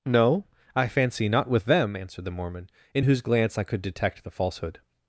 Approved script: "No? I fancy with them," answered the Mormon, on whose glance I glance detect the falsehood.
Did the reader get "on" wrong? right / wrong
wrong